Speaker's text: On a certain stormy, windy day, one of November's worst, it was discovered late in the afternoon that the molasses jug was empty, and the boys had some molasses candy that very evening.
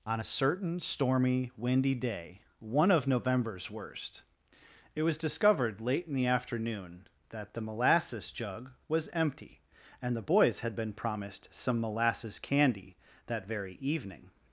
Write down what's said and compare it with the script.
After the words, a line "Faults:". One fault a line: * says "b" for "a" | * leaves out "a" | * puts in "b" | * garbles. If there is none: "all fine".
On a certain stormy, windy day, one of November's worst, it was discovered late in the afternoon that the molasses jug was empty, and the boys had been promised some molasses candy that very evening.
Faults:
* puts in "been promised"